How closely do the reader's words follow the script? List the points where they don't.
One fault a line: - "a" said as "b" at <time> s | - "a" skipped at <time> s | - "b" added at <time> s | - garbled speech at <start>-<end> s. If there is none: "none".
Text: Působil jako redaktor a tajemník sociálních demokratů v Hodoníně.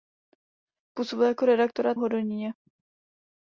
- "tajemník sociálních demokratů" skipped at 1.9 s